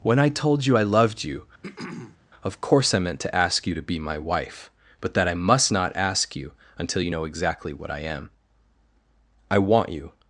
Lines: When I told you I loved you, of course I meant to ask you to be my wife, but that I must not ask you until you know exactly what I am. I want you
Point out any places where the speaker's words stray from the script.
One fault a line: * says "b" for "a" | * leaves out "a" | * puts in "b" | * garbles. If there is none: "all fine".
all fine